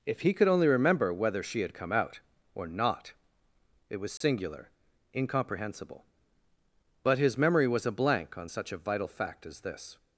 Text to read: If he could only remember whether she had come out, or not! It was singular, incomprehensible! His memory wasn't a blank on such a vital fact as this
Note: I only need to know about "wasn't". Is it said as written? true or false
false